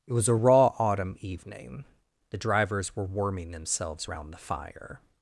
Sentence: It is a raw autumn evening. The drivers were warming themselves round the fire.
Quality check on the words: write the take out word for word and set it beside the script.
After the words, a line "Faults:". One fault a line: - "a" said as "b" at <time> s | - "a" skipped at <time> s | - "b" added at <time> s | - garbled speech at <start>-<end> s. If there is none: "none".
It was a raw autumn evening. The drivers were warming themselves round the fire.
Faults:
- "is" said as "was" at 0.1 s